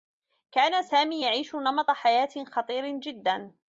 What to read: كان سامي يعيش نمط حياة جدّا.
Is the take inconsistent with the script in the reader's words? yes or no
yes